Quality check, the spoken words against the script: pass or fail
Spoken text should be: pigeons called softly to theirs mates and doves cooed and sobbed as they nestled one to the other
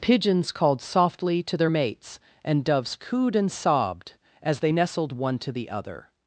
fail